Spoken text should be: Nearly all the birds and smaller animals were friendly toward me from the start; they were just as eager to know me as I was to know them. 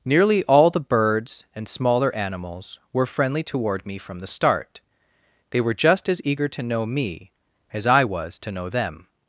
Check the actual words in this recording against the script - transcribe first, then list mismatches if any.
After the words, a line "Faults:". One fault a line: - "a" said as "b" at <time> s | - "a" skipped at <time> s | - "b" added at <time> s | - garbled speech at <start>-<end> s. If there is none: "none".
Nearly all the birds and smaller animals were friendly toward me from the start; they were just as eager to know me as I was to know them.
Faults:
none